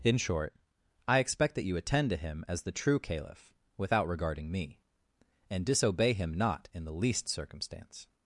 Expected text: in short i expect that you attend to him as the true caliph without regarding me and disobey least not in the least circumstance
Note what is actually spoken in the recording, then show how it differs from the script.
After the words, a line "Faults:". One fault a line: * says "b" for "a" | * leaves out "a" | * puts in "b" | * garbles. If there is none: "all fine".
in short i expect that you attend to him as the true caliph without regarding me and disobey him not in the least circumstance
Faults:
* says "him" for "least"